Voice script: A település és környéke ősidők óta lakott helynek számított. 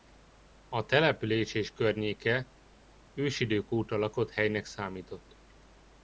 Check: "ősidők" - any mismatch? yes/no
no